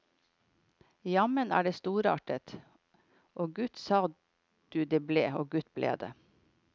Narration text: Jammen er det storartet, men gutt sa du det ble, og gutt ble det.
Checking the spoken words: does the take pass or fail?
fail